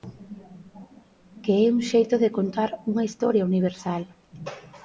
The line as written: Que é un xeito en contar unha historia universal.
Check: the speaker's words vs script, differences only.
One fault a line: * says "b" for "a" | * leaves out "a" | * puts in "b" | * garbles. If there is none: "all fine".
* says "de" for "en"